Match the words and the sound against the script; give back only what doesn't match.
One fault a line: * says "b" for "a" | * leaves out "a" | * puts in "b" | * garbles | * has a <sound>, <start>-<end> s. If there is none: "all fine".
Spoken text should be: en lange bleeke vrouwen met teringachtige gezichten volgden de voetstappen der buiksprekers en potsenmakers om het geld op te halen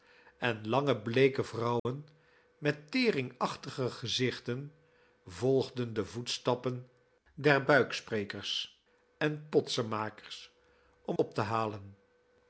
* has a dropout, 1.8-1.9 s
* leaves out "het geld"